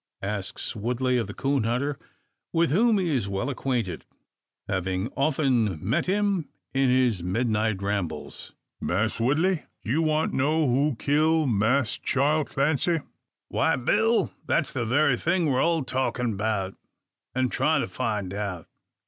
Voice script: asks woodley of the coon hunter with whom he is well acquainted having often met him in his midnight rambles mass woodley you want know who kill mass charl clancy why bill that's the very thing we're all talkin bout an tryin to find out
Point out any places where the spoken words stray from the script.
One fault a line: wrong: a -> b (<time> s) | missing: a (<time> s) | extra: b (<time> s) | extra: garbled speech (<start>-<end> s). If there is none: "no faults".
no faults